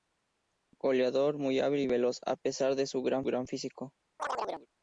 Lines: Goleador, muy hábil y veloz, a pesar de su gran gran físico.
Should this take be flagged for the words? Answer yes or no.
no